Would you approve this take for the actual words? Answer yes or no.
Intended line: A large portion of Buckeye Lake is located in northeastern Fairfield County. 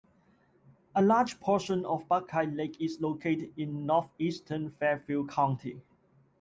yes